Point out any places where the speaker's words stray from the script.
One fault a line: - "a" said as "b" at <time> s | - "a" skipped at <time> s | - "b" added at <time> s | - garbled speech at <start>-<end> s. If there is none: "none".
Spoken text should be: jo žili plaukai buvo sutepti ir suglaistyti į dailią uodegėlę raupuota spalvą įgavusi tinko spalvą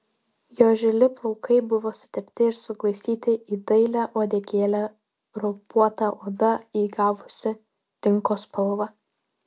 - "spalvą" said as "oda" at 6.3 s